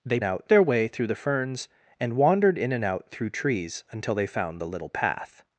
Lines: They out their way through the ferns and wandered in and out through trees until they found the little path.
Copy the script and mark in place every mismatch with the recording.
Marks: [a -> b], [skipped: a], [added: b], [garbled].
They out their way through the ferns and wandered in and out through trees until they found the little path.